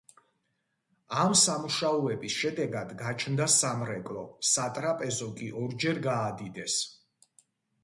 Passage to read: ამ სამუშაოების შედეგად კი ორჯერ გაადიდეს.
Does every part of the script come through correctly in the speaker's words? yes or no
no